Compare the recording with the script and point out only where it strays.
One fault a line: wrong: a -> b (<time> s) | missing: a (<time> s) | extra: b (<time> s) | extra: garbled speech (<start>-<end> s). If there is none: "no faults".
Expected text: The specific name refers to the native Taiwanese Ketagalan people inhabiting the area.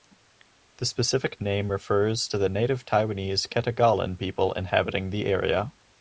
no faults